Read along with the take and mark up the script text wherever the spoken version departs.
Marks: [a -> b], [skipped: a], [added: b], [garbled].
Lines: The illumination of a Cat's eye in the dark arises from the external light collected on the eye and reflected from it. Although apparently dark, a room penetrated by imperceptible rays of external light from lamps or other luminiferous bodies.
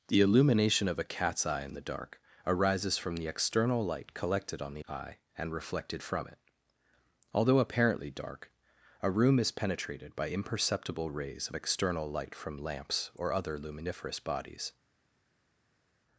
The illumination of a Cat's eye in the dark arises from the external light collected on the eye and reflected from it. Although apparently dark, a room [added: is] penetrated by imperceptible rays of external light from lamps or other luminiferous bodies.